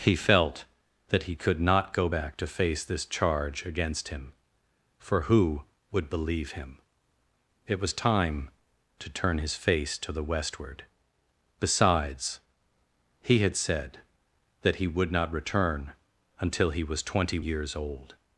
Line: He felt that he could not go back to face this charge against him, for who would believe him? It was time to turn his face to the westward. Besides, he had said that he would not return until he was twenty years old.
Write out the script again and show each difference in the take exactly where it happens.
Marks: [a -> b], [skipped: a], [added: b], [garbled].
He felt that he could not go back to face this charge against him, for who would believe him? It was time to turn his face to the westward. Besides, he had said that he would not return until he was twenty years old.